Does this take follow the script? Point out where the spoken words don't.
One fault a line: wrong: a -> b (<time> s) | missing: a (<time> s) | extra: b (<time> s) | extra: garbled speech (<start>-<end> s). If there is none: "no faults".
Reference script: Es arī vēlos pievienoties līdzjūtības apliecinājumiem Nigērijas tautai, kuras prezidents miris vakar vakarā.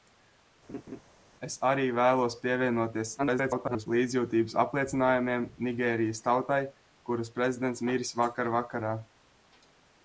extra: garbled speech (3.2-3.9 s)